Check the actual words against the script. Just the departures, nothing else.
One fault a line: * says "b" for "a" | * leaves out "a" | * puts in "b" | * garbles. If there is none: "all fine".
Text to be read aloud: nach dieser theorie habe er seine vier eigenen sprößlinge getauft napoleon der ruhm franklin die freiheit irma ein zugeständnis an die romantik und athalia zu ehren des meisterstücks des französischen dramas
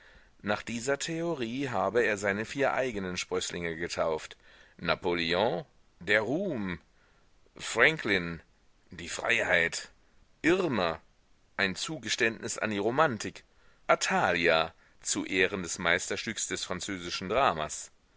* leaves out "und"